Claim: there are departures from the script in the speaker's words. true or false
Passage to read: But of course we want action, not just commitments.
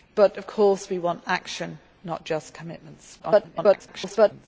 true